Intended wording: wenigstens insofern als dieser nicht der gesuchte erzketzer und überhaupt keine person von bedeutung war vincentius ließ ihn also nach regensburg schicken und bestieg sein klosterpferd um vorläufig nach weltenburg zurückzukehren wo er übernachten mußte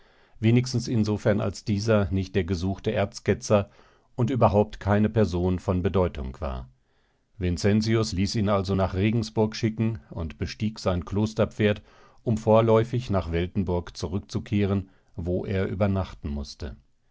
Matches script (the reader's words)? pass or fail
pass